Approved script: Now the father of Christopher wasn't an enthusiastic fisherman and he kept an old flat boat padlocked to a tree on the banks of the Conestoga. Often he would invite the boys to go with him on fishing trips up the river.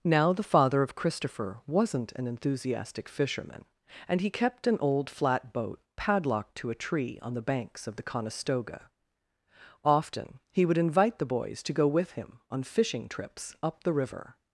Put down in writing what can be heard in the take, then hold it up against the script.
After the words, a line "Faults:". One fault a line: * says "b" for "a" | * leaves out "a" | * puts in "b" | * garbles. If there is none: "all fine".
Now the father of Christopher wasn't an enthusiastic fisherman and he kept an old flat boat padlocked to a tree on the banks of the Conestoga. Often he would invite the boys to go with him on fishing trips up the river.
Faults:
all fine